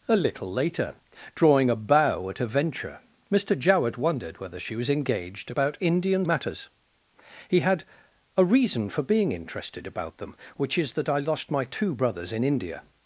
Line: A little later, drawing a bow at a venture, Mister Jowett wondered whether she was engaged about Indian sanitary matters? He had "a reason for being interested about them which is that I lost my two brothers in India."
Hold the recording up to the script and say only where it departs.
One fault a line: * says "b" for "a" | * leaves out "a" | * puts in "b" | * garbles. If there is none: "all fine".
* leaves out "sanitary"